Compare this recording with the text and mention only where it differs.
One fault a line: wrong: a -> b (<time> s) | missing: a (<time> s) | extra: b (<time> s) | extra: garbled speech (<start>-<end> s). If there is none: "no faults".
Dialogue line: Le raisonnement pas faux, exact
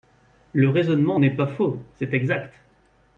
extra: n'est (1.2 s)
extra: c'est (1.9 s)